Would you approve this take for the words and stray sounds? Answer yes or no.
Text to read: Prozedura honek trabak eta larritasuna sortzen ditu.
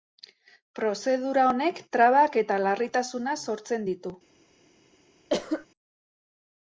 no